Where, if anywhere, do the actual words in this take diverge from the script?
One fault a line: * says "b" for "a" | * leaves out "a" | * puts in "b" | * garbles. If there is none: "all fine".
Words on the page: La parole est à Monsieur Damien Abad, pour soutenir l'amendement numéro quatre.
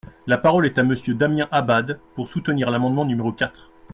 all fine